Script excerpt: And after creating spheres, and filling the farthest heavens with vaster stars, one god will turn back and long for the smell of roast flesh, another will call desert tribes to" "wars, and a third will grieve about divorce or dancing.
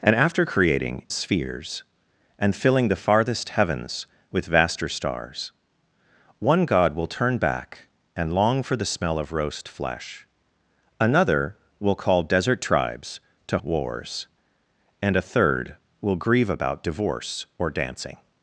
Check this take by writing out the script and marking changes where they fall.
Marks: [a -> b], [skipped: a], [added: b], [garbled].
And after creating spheres, and filling the farthest heavens with vaster stars, one god will turn back and long for the smell of roast flesh, another will call desert tribes to" "wars, and a third will grieve about divorce or dancing.